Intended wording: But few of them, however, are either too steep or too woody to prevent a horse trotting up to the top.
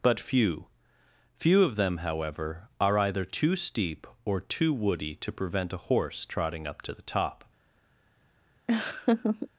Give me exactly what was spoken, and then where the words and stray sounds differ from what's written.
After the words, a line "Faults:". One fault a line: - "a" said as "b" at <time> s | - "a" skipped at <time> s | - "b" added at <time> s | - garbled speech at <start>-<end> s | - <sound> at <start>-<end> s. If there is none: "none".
But few few of them, however, are either too steep or too woody to prevent a horse trotting up to the top.
Faults:
- "few" added at 1.4 s
- laugh at 8.7-9.5 s